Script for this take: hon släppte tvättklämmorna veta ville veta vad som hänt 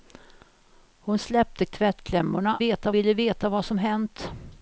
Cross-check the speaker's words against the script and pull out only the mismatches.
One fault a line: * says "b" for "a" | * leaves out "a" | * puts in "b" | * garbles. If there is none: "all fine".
all fine